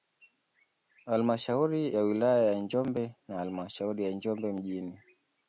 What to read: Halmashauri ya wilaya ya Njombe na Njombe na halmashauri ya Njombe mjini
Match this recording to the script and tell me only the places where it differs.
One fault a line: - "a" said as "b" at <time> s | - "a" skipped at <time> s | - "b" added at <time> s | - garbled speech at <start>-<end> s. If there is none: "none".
- "Njombe na" skipped at 3.4 s